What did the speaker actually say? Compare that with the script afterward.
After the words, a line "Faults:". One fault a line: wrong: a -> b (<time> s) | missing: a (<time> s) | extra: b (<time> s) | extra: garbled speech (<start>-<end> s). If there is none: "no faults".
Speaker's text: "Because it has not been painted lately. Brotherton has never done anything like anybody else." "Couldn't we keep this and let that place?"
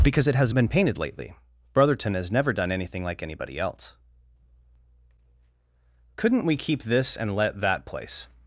"Because it has been painted lately. Brotherton has never done anything like anybody else." "Couldn't we keep this and let that place?"
Faults:
missing: not (0.5 s)